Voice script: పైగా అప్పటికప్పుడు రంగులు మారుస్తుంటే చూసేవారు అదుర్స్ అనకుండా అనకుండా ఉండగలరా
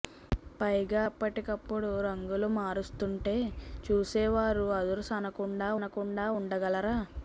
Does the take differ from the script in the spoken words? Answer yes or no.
no